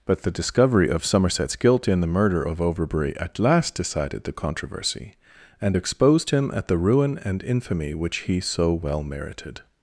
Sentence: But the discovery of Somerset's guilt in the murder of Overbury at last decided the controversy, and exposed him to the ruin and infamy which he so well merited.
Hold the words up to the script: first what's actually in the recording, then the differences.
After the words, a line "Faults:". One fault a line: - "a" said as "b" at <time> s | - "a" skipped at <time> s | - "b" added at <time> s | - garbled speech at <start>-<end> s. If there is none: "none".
But the discovery of Somerset's guilt in the murder of Overbury at last decided the controversy, and exposed him at the ruin and infamy which he so well merited.
Faults:
- "to" said as "at" at 6.5 s